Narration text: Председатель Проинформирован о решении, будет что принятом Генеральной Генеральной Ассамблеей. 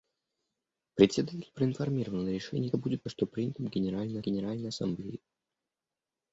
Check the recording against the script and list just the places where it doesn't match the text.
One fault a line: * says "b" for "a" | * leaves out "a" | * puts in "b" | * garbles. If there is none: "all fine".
all fine